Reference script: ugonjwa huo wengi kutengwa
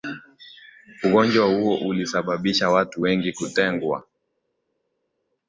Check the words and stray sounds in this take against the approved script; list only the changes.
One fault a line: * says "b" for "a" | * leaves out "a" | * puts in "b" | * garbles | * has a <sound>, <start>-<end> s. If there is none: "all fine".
* puts in "ulisababisha watu"